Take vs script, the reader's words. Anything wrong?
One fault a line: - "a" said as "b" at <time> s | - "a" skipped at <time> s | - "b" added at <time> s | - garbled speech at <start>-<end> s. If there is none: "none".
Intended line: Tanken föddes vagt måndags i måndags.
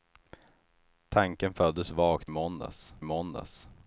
none